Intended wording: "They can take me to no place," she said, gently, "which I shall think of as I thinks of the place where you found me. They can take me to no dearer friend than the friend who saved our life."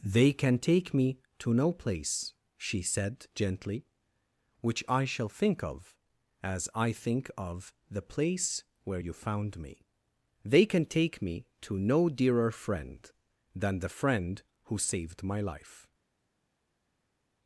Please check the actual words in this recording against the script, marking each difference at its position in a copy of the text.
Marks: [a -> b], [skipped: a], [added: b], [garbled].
"They can take me to no place," she said, gently, "which I shall think of as I [thinks -> think] of the place where you found me. They can take me to no dearer friend than the friend who saved [our -> my] life."